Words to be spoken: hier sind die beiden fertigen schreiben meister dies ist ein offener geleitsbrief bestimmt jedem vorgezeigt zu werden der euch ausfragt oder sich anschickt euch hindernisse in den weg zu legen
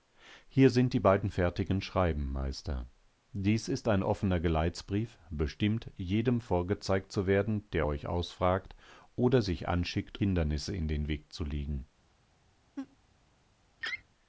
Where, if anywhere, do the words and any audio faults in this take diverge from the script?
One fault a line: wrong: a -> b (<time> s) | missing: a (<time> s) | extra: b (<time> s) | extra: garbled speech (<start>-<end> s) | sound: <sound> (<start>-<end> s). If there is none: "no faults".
missing: euch (10.2 s)
sound: laugh (12.8-13.0 s)
sound: laugh (13.8-14.0 s)